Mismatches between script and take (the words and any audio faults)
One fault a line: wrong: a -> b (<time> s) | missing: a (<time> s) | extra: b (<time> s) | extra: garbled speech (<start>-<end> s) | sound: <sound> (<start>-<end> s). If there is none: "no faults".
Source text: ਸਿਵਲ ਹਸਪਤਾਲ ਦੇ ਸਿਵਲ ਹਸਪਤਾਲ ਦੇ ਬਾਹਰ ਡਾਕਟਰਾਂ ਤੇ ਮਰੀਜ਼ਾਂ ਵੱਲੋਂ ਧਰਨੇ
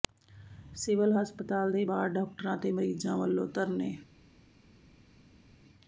missing: ਸਿਵਲ ਹਸਪਤਾਲ ਦੇ (1.8 s)